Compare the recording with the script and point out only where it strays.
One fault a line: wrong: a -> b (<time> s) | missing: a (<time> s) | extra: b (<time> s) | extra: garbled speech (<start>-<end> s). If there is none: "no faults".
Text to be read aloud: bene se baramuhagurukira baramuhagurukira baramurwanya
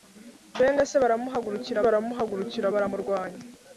no faults